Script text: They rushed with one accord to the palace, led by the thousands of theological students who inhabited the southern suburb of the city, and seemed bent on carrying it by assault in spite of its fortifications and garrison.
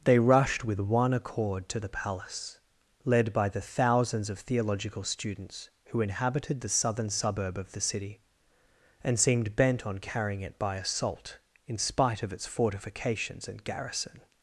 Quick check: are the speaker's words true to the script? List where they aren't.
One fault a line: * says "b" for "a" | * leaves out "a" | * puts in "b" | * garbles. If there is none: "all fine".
all fine